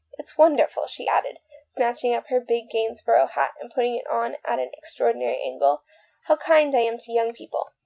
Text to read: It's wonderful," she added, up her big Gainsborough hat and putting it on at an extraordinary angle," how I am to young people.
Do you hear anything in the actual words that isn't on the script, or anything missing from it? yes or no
yes